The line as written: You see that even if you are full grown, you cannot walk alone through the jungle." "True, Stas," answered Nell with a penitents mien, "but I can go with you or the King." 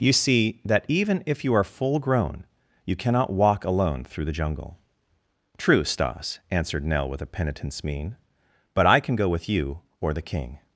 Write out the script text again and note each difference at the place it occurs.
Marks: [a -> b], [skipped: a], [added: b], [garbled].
You see that even if you are full grown, you cannot walk alone through the jungle." "True, Stas," answered Nell with a penitents mien, "but I can go with you or the King."